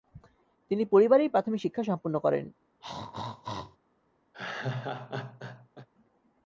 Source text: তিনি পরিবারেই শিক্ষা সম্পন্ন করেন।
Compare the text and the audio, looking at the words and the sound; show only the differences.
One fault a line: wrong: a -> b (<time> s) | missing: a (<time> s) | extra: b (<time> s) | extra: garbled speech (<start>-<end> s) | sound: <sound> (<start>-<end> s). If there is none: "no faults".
extra: প্রাথমিক (1.3 s)
sound: throat clearing (2.8-3.8 s)
sound: laugh (4.3-5.9 s)